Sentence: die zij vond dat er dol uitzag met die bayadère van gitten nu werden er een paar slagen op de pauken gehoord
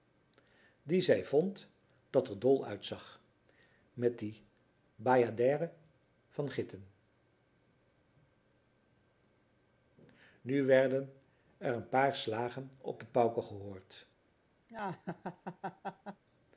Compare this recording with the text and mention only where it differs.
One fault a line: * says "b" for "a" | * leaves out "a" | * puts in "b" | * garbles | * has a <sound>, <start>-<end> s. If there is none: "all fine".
* has a laugh, 14.7-16.2 s